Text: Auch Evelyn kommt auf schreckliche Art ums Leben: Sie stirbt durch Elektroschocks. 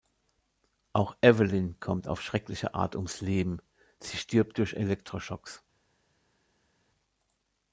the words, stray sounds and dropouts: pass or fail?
pass